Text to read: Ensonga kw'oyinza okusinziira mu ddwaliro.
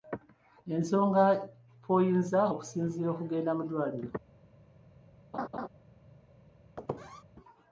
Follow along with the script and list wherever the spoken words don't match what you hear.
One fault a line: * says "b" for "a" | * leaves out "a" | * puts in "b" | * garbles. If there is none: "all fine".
* puts in "okugenda"